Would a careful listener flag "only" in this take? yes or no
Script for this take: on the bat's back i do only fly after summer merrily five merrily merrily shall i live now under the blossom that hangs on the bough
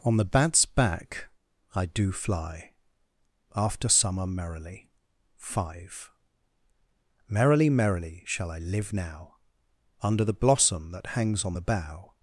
yes